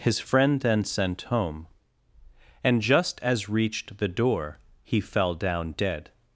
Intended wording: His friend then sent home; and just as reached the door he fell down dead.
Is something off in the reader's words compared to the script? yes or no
no